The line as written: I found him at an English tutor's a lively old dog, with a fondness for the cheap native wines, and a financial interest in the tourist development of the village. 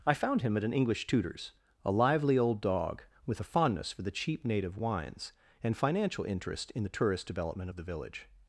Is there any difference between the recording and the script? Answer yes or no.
yes